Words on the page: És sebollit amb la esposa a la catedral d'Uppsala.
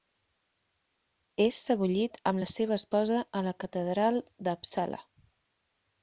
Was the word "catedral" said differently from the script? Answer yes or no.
no